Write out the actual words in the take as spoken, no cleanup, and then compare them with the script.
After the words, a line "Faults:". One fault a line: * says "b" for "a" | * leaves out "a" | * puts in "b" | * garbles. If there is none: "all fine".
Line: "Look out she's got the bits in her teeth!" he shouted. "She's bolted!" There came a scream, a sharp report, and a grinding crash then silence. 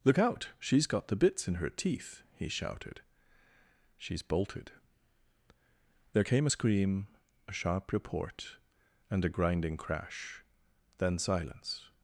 "Look out she's got the bits in her teeth!" he shouted. "She's bolted!" There came a scream, a sharp report, and a grinding crash then silence.
Faults:
all fine